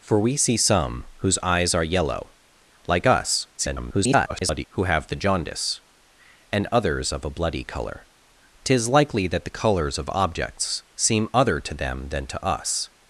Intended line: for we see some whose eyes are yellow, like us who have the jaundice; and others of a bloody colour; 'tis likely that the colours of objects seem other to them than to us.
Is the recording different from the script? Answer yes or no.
yes